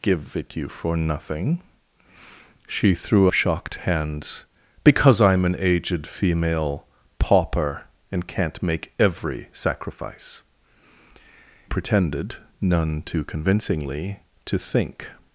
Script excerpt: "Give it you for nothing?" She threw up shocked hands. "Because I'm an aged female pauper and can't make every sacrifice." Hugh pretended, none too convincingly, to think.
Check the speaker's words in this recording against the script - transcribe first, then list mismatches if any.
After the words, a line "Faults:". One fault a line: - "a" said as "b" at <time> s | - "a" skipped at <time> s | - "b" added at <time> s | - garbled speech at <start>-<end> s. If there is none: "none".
"Give it you for nothing?" She threw shocked hands. "Because I'm an aged female pauper and can't make every sacrifice." Pretended, none too convincingly, to think.
Faults:
- "up" skipped at 3.3 s
- "Hugh" skipped at 10.4 s